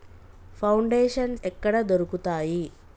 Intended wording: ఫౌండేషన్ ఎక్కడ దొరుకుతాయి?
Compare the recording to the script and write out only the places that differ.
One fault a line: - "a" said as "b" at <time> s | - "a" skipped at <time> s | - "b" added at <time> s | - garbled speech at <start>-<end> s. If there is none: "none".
none